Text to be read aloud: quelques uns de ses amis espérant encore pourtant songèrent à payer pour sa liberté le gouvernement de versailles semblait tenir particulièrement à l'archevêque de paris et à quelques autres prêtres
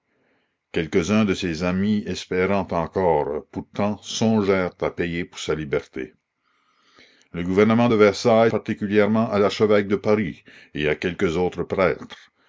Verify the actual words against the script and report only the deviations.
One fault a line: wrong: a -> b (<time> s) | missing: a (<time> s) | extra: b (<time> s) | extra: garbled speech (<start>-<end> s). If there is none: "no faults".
missing: semblait tenir (8.5 s)